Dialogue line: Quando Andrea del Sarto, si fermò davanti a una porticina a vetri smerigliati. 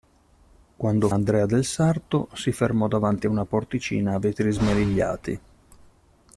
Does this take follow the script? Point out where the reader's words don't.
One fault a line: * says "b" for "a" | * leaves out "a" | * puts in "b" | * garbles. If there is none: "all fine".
all fine